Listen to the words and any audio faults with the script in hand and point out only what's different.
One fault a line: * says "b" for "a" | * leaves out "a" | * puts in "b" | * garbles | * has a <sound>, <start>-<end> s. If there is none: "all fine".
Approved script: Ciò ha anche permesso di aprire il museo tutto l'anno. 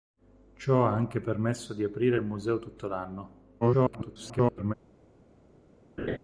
* garbles
* has a laugh, 6.0-6.2 s